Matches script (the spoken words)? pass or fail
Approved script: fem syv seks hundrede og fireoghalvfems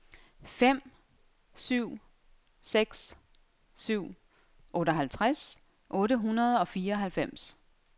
fail